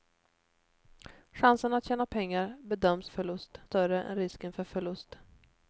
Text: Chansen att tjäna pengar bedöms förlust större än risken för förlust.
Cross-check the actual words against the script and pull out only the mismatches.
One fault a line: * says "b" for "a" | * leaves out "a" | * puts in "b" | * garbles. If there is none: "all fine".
all fine